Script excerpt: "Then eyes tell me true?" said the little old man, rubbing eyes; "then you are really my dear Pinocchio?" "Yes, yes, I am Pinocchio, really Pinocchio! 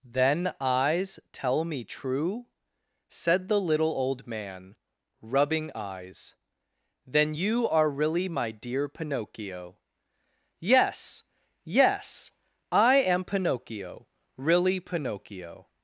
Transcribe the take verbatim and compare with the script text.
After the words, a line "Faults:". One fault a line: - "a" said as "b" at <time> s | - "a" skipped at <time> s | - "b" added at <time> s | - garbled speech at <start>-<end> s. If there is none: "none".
"Then eyes tell me true?" said the little old man, rubbing eyes; "then you are really my dear Pinocchio?" "Yes, yes, I am Pinocchio, really Pinocchio!
Faults:
none